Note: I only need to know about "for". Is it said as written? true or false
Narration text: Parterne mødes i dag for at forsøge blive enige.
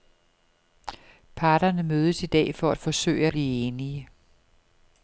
true